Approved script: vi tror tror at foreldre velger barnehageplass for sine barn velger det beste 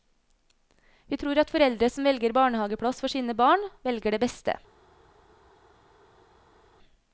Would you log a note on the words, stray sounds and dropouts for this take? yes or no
yes